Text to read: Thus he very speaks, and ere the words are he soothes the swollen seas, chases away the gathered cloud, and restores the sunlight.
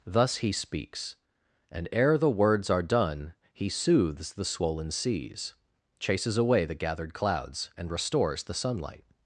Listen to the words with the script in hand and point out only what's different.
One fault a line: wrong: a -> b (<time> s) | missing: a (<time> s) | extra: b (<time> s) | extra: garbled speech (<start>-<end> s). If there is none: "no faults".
missing: very (0.5 s)
extra: done (2.8 s)
wrong: cloud -> clouds (7.1 s)